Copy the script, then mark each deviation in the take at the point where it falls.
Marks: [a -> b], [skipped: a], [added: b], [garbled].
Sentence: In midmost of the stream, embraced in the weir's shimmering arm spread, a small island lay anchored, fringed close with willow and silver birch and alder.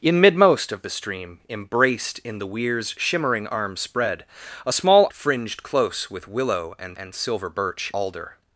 In midmost of the stream, embraced in the weir's shimmering arm spread, a small [skipped: island lay anchored,] fringed close with willow and [added: and] silver birch [skipped: and] alder.